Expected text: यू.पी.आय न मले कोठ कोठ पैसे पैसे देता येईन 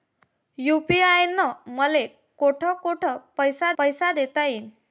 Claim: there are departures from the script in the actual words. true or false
false